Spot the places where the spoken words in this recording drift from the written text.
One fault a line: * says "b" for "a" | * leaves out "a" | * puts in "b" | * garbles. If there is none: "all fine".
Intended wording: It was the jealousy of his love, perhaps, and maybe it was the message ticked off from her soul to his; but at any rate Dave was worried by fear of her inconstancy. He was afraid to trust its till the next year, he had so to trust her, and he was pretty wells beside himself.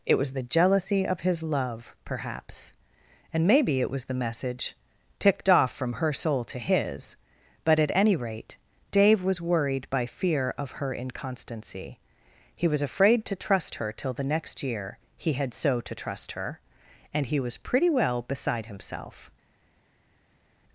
* says "her" for "its"
* says "well" for "wells"